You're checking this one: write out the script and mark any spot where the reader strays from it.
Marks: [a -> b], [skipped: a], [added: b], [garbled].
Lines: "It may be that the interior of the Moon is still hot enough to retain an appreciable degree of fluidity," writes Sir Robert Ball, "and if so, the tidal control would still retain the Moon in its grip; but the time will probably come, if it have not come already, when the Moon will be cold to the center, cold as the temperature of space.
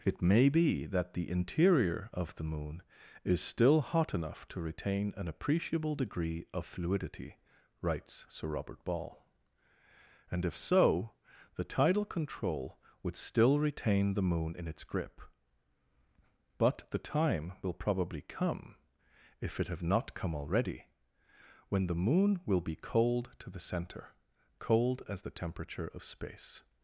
"It may be that the interior of the Moon is still hot enough to retain an appreciable degree of fluidity," writes Sir Robert Ball, "and if so, the tidal control would still retain the Moon in its grip; but the time will probably come, if it have not come already, when the Moon will be cold to the center, cold as the temperature of space.